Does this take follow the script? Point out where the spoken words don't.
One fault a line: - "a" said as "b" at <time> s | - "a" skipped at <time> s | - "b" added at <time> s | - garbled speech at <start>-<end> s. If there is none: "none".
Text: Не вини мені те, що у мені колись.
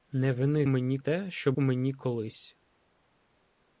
none